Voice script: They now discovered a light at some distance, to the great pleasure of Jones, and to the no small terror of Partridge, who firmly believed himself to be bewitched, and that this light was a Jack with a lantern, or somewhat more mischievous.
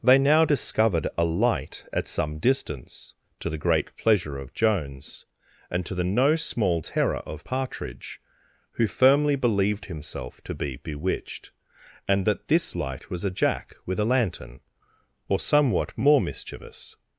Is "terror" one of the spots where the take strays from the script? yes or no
no